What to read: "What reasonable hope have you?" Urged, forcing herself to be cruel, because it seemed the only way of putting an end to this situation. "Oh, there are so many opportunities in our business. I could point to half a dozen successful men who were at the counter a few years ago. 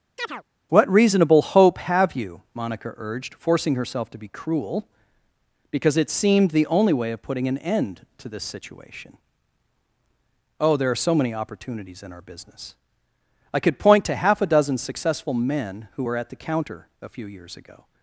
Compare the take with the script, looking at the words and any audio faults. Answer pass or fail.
fail